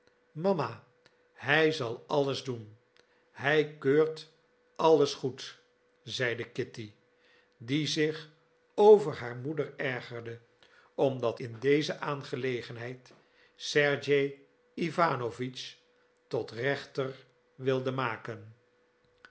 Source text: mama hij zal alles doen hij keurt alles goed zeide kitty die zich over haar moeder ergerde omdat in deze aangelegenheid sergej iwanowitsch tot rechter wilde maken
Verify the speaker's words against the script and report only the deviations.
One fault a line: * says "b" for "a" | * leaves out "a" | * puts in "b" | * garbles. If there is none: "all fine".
all fine